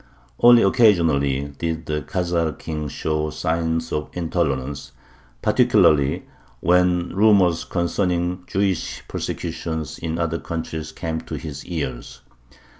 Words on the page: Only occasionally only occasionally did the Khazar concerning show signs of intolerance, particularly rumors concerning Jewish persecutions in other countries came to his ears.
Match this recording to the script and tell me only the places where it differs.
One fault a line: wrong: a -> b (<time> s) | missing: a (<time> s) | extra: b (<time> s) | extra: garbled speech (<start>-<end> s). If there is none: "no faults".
missing: only occasionally (1.5 s)
wrong: concerning -> king (2.6 s)
extra: when (6.6 s)